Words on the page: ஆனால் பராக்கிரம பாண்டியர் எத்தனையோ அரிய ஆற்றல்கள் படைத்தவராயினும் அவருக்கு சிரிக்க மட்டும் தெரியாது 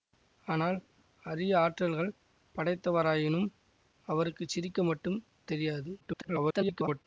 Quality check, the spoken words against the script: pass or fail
fail